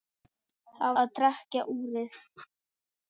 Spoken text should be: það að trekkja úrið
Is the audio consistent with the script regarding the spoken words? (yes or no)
yes